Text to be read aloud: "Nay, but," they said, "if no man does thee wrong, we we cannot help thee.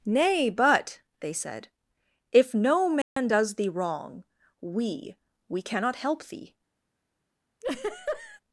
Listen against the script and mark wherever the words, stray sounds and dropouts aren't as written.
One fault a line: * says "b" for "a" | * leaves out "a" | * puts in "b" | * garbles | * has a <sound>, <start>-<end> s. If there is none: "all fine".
* has a dropout, 3.0-3.2 s
* has a laugh, 7.6-8.4 s